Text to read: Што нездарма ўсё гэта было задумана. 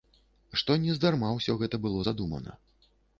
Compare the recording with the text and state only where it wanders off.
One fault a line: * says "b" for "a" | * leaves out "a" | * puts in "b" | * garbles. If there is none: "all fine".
all fine